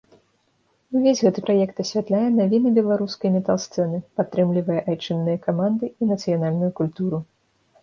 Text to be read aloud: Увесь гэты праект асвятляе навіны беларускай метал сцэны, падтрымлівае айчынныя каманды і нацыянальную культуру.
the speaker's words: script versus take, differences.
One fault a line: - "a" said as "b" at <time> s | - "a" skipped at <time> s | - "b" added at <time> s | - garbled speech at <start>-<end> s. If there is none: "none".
none